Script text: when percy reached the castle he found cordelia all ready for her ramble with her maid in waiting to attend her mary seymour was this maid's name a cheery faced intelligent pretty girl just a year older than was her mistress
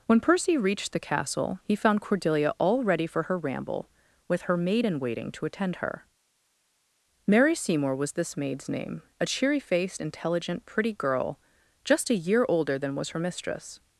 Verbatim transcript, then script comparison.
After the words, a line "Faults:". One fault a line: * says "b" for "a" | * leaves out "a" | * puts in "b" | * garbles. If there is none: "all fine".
when percy reached the castle he found cordelia all ready for her ramble with her maid in waiting to attend her mary seymour was this maid's name a cheery faced intelligent pretty girl just a year older than was her mistress
Faults:
all fine